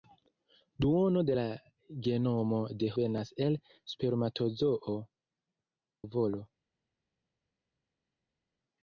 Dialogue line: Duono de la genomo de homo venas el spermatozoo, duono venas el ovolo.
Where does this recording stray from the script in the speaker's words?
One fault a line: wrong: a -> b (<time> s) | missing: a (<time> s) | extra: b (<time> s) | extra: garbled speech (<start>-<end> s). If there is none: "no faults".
missing: homo (2.9 s)
missing: duono venas el (5.0 s)